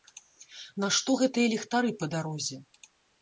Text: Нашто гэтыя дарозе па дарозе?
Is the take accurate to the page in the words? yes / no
no